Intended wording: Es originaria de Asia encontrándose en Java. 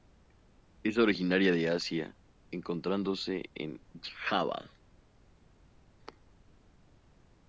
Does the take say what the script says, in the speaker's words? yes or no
yes